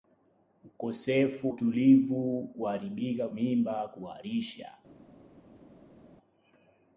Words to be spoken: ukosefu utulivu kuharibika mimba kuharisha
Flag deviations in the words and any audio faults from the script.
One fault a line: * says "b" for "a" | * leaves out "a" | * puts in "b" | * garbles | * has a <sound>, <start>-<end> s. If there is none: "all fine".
all fine